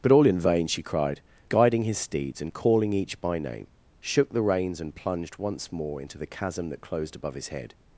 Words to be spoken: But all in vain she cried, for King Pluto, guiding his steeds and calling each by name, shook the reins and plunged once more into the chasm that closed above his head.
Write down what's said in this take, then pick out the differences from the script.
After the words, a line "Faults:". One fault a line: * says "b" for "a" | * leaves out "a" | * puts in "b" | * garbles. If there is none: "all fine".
But all in vain she cried, guiding his steeds and calling each by name, shook the reins and plunged once more into the chasm that closed above his head.
Faults:
* leaves out "for King Pluto"